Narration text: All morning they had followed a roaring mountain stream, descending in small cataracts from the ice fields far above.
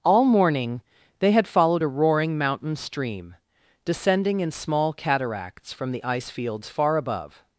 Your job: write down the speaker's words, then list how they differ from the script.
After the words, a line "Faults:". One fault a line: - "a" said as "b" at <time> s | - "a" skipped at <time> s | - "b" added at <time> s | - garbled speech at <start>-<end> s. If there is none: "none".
All morning they had followed a roaring mountain stream, descending in small cataracts from the ice fields far above.
Faults:
none